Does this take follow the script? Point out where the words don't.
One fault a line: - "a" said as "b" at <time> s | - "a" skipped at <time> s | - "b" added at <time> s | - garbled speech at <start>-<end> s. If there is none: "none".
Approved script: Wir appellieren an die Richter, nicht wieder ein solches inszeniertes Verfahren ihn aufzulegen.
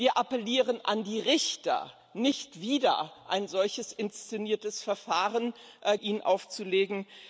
none